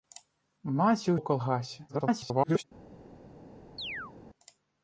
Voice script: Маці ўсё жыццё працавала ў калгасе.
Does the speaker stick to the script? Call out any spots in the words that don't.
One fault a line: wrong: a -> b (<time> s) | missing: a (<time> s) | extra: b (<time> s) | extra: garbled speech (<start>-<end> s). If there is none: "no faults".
missing: ўсё жыццё працавала (1.1 s)
extra: garbled speech (1.9-2.6 s)